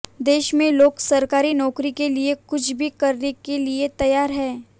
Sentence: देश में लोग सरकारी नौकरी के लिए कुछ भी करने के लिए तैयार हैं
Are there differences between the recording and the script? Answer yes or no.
no